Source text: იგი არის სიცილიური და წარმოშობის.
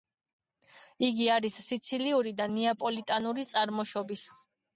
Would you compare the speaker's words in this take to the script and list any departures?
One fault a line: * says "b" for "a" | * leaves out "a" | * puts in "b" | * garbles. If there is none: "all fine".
* puts in "ნეაპოლიტანური"